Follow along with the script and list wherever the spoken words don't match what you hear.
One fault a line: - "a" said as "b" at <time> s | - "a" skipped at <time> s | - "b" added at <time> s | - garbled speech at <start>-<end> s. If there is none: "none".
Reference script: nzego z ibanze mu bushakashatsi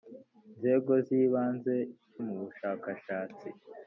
none